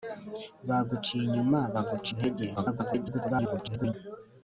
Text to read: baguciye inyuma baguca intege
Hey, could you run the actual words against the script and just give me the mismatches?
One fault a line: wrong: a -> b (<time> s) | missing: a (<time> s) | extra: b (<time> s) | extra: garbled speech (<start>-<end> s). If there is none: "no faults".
extra: garbled speech (2.6-3.9 s)